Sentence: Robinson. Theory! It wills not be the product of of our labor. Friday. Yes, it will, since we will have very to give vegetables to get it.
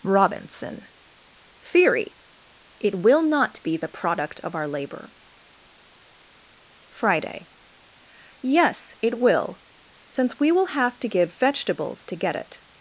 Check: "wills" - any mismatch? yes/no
yes